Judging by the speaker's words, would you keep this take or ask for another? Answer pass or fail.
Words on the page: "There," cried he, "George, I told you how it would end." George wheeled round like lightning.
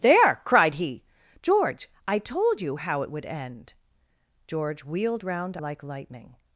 pass